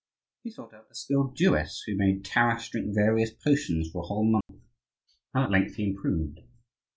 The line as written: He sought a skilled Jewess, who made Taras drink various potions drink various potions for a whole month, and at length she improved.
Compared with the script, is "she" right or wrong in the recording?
wrong